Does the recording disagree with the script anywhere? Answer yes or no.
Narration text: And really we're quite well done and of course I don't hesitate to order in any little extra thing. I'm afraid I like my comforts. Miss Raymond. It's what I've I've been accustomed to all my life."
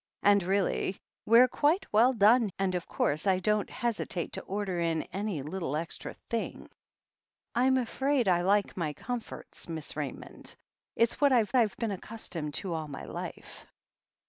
no